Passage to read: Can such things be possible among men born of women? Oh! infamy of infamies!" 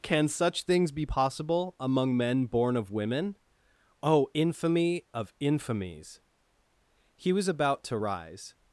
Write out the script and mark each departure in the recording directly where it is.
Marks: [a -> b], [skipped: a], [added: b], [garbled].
Can such things be possible among men born of women? Oh! infamy of infamies!" [added: He was about to rise]